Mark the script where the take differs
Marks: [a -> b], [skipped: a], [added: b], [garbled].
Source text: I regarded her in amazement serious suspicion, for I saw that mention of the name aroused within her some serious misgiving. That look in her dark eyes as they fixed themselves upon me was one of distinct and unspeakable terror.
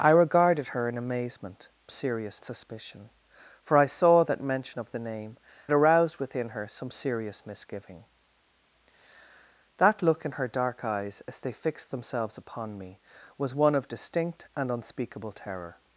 I regarded her in amazement serious suspicion, for I saw that mention of the name aroused within her some serious misgiving. That look in her dark eyes as they fixed themselves upon me was one of distinct and unspeakable terror.